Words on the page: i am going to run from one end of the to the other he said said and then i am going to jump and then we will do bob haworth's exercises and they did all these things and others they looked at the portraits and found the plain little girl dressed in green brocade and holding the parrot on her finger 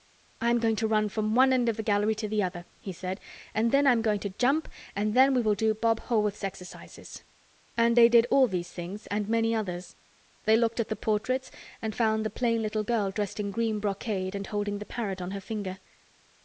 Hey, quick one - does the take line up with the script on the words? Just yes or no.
no